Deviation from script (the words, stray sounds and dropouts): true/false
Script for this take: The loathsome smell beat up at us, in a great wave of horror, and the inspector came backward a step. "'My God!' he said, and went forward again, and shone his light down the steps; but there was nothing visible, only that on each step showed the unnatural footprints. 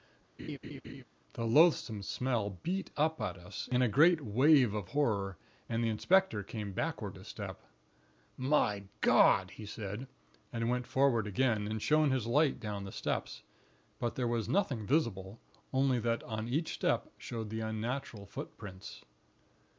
true